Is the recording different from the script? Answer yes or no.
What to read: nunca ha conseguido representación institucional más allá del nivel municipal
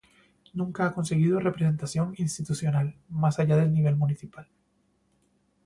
no